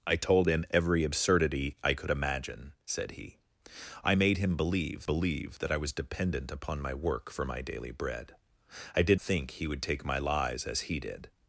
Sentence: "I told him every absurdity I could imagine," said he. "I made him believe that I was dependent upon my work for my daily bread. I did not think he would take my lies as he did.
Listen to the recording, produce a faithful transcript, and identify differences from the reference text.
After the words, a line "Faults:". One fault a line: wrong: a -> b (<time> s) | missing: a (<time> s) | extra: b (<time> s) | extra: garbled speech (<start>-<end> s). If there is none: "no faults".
"I told him every absurdity I could imagine," said he. "I made him believe believe that I was dependent upon my work for my daily bread. I did think he would take my lies as he did.
Faults:
extra: believe (5.1 s)
missing: not (9.2 s)